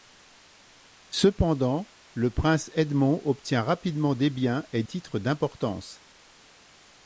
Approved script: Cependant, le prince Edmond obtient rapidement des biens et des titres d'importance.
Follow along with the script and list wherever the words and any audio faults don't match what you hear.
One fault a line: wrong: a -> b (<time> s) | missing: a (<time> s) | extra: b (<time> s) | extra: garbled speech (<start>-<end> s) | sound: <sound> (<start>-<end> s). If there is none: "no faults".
missing: des (4.8 s)